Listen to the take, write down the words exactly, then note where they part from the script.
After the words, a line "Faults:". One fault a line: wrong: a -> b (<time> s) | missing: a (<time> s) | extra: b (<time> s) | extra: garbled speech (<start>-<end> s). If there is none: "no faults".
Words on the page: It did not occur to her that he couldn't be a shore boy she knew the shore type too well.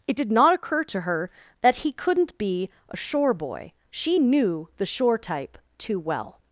It did not occur to her that he couldn't be a shore boy she knew the shore type too well.
Faults:
no faults